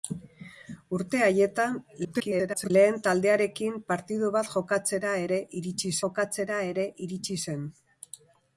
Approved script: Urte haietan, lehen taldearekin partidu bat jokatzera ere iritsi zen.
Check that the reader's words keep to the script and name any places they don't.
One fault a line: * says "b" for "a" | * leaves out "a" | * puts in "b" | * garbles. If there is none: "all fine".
* garbles
* puts in "jokatzera ere iritsi"